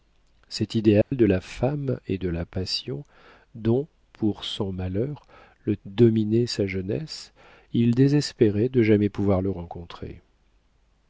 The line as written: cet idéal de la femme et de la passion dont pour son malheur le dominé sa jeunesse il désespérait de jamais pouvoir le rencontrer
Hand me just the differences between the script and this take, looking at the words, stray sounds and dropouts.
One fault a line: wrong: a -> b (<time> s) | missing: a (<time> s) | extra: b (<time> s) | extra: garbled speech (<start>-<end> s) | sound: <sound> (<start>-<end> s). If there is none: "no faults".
sound: dropout (1.0-1.1 s)